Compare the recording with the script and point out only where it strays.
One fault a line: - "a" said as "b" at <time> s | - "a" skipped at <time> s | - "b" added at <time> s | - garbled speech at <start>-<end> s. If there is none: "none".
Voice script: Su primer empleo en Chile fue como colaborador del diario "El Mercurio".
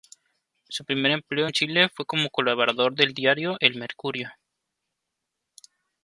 none